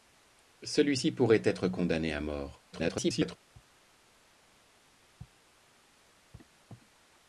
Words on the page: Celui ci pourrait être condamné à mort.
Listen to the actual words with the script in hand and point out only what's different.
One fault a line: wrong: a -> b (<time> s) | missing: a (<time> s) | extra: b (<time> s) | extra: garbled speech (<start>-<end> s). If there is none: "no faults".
extra: garbled speech (2.7-3.4 s)